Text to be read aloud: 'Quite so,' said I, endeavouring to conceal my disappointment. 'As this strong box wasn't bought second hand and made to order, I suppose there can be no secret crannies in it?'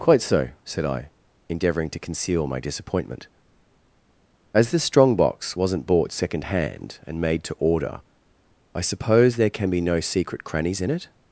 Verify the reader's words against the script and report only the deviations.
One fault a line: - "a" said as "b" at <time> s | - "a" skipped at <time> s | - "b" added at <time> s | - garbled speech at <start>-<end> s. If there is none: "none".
none